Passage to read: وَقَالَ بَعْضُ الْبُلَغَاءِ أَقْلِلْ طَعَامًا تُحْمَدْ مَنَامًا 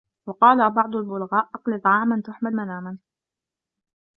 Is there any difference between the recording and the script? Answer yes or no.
no